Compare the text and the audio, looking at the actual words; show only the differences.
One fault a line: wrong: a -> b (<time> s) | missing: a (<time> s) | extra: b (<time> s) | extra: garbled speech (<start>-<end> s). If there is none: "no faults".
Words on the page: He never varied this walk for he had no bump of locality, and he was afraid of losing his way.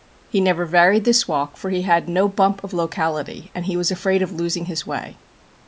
no faults